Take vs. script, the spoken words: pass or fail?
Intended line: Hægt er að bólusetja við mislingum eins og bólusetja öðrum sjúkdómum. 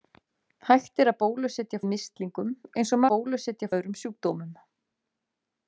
pass